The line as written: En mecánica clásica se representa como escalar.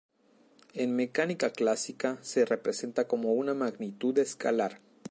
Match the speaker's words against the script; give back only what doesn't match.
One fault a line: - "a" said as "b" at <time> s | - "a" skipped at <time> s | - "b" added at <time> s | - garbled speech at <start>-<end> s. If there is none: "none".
- "una magnitud" added at 3.3 s